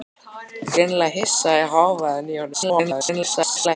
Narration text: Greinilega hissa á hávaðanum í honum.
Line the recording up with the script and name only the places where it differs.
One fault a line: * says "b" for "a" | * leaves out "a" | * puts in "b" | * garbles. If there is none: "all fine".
* garbles